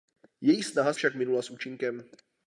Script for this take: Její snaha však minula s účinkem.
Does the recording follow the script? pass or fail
pass